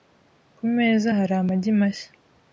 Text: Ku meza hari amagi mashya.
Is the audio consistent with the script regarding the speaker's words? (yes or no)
yes